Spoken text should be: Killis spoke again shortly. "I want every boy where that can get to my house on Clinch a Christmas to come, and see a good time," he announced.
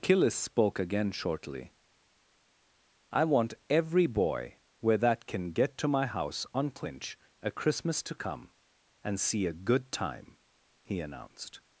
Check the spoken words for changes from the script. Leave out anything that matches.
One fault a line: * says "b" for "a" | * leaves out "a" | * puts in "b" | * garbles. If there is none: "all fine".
all fine